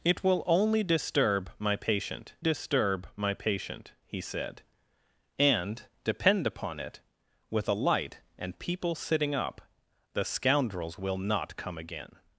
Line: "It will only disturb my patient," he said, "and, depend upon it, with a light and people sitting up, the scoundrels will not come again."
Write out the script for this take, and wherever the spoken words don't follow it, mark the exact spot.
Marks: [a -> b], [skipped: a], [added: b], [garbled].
"It will only disturb my patient," [added: disturb my patient] he said, "and, depend upon it, with a light and people sitting up, the scoundrels will not come again."